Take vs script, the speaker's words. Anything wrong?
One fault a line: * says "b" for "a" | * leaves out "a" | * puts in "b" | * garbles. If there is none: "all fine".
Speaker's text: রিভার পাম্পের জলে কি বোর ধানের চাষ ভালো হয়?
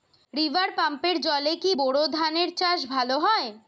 all fine